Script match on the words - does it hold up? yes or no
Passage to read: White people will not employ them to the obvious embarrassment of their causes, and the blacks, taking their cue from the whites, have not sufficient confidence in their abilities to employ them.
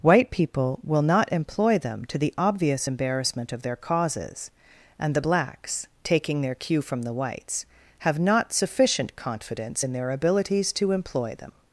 yes